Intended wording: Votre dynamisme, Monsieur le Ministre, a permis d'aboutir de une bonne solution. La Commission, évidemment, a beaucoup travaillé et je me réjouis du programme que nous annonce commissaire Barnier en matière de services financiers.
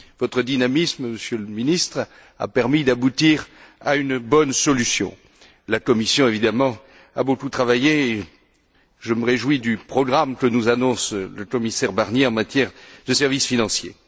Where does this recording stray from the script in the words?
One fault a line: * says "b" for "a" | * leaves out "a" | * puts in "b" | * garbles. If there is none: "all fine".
* says "à" for "de"
* puts in "le"